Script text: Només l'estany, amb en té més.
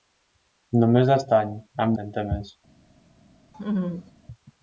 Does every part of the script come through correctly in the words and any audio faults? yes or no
no